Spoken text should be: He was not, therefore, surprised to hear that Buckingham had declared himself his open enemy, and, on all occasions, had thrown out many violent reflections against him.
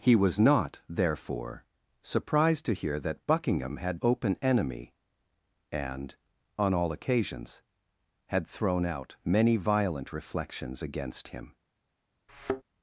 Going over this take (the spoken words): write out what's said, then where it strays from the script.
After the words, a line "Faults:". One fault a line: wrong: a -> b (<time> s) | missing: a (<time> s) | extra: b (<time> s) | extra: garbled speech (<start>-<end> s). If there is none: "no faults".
He was not, therefore, surprised to hear that Buckingham had open enemy, and, on all occasions, had thrown out many violent reflections against him.
Faults:
missing: declared himself his (4.0 s)